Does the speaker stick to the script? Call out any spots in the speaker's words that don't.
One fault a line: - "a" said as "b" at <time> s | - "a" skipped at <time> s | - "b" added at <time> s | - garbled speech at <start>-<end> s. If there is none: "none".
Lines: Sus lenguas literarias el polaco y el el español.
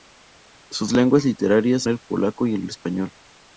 none